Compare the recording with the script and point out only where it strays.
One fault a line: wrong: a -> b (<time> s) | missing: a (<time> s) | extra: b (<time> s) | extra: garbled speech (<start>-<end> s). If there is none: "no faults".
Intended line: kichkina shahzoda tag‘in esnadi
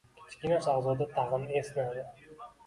no faults